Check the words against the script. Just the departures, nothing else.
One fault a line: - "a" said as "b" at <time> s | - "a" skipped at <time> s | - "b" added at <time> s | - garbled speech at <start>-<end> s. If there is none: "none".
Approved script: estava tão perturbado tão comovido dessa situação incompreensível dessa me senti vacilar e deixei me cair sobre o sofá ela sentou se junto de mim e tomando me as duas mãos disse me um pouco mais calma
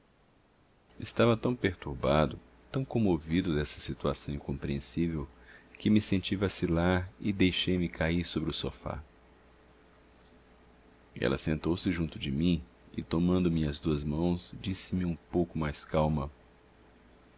- "dessa" said as "que" at 5.8 s